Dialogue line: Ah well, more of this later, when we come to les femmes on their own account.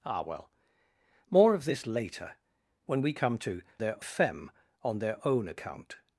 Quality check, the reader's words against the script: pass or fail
fail